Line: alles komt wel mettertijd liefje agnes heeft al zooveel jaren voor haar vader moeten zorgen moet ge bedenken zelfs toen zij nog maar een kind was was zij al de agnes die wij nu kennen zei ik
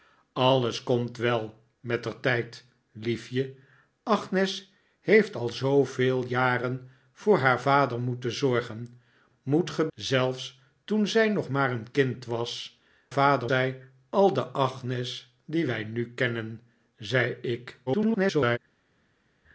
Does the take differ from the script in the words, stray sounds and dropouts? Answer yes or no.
yes